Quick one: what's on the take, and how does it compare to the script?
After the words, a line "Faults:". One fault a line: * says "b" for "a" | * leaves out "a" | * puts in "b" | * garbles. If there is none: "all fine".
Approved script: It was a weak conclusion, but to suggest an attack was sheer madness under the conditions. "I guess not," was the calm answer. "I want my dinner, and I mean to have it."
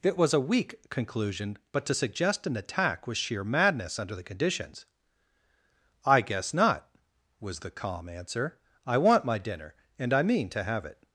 It was a weak conclusion, but to suggest an attack was sheer madness under the conditions. "I guess not," was the calm answer. "I want my dinner, and I mean to have it."
Faults:
all fine